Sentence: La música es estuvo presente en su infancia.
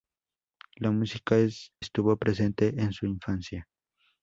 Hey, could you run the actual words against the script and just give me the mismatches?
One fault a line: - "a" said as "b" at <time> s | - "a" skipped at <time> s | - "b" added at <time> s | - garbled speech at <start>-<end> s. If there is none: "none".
none